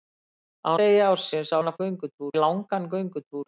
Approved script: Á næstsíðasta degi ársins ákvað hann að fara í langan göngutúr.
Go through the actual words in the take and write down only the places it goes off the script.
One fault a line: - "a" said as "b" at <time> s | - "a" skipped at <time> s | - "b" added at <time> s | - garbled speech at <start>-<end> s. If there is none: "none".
- "næstsíðasta" skipped at 0.7 s
- "ákvað" skipped at 1.6 s
- "fara" said as "göngutúr" at 1.8 s